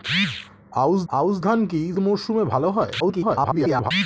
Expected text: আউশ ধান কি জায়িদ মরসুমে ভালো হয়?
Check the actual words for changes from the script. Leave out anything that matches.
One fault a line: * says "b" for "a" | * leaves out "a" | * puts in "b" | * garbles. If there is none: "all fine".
* puts in "আউশ"
* leaves out "জায়িদ"
* garbles